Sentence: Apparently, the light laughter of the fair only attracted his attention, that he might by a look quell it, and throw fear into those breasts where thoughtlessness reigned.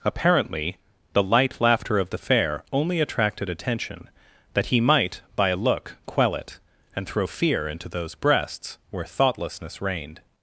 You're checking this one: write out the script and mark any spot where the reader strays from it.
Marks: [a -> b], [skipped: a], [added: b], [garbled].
Apparently, the light laughter of the fair only attracted [skipped: his] attention, that he might by a look quell it, and throw fear into those breasts where thoughtlessness reigned.